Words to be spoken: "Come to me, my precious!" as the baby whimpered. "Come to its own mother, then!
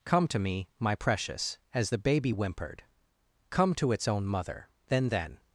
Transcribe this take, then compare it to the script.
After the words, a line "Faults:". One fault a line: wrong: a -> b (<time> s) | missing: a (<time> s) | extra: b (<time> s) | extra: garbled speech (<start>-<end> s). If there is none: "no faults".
"Come to me, my precious!" as the baby whimpered. "Come to its own mother, then then!
Faults:
extra: then (5.1 s)